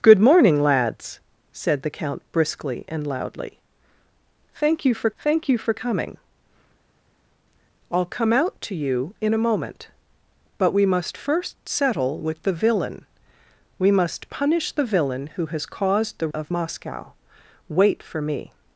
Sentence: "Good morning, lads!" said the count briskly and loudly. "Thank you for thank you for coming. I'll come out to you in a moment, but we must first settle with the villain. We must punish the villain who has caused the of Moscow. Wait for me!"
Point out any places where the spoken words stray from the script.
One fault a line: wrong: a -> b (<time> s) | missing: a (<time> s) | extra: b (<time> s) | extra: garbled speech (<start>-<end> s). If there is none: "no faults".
no faults